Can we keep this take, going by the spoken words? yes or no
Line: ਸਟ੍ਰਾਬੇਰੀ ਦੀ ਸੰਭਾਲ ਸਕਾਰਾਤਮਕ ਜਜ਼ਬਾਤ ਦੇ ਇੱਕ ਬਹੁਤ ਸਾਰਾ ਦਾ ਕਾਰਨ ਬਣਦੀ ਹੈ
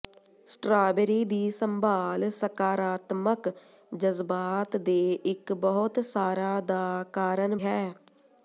no